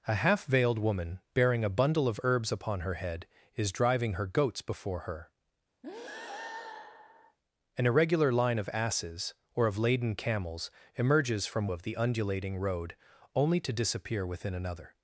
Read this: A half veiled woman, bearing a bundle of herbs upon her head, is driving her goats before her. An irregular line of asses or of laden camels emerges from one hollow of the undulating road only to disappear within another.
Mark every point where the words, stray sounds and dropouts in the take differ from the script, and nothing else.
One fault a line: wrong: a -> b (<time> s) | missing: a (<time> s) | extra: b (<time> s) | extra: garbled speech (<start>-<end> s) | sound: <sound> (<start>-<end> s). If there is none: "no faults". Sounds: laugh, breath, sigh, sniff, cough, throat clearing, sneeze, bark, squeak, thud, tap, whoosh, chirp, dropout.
sound: breath (5.8-7.4 s)
missing: one hollow (11.7 s)